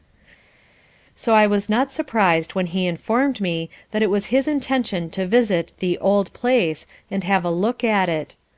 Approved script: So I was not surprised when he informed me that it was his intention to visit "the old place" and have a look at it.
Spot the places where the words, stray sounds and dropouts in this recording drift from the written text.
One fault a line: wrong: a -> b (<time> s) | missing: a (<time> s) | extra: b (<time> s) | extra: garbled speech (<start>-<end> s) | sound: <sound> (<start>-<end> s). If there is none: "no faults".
no faults